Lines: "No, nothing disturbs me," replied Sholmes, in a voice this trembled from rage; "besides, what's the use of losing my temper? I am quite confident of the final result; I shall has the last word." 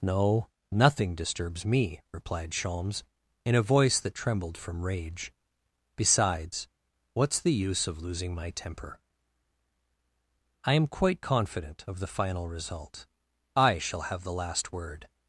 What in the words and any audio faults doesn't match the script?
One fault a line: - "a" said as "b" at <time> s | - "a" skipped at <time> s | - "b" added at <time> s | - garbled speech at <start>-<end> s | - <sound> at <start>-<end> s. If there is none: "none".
- "this" said as "that" at 4.0 s
- "has" said as "have" at 14.1 s